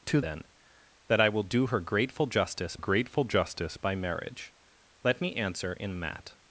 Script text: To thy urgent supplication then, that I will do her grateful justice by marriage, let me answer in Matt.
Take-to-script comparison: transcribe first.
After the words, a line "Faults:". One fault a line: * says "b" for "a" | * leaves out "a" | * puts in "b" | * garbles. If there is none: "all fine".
To then, that I will do her grateful justice grateful justice by marriage, let me answer in Matt.
Faults:
* leaves out "thy urgent supplication"
* puts in "grateful justice"